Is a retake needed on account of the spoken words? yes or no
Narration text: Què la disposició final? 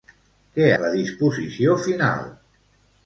no